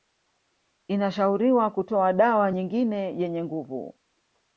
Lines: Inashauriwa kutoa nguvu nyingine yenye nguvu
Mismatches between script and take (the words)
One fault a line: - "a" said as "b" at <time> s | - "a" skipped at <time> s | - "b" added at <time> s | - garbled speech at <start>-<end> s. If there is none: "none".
- "nguvu" said as "dawa" at 2.1 s